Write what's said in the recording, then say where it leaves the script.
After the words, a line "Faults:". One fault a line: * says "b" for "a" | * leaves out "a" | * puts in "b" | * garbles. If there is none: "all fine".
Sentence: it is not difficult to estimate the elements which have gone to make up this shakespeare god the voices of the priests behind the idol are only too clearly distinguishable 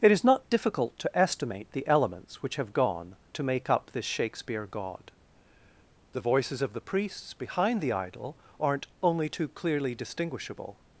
it is not difficult to estimate the elements which have gone to make up this shakespeare god the voices of the priests behind the idol aren't only too clearly distinguishable
Faults:
* says "aren't" for "are"